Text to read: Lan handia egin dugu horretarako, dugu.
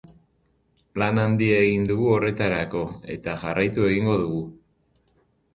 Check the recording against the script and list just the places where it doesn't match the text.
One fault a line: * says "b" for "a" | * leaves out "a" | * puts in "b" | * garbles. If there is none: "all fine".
* puts in "eta jarraitu egingo"